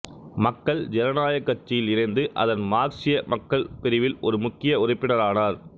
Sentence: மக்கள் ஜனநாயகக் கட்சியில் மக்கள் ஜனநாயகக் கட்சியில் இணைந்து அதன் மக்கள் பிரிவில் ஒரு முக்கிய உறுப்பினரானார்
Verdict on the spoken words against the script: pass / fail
fail